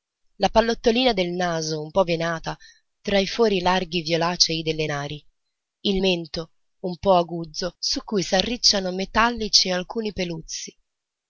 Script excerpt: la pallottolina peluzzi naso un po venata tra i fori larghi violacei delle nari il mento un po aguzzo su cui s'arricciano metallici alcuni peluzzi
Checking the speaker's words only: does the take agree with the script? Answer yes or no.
no